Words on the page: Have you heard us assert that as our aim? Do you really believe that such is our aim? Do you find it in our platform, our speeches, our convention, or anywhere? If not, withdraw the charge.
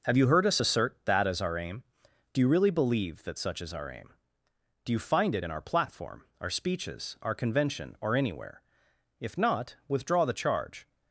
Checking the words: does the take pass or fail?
pass